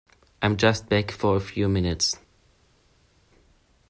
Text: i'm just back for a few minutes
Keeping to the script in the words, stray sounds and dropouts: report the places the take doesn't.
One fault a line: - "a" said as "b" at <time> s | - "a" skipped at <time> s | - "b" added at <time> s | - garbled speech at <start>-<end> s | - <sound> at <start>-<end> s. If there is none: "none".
none